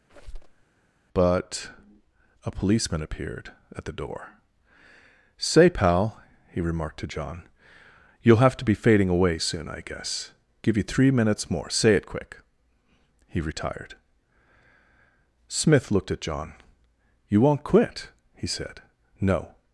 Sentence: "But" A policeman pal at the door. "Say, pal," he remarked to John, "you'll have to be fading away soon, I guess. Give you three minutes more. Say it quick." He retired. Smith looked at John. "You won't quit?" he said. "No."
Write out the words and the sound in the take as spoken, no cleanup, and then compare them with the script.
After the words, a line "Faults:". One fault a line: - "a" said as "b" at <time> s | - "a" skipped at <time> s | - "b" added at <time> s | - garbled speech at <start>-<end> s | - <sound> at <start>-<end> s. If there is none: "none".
"But" A policeman appeared at the door. "Say, pal," he remarked to John, "you'll have to be fading away soon, I guess. Give you three minutes more. Say it quick." He retired. Smith looked at John. "You won't quit?" he said. "No."
Faults:
- squeak at 0.1-0.6 s
- "pal" said as "appeared" at 3.0 s